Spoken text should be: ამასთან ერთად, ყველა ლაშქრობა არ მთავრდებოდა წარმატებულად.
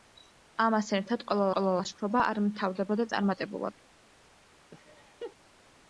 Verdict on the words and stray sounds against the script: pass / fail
fail